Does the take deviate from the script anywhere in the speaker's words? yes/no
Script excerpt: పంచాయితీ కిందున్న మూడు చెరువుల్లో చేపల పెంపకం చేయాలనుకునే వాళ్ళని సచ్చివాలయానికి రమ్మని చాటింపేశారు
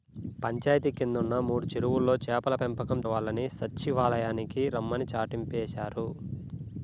yes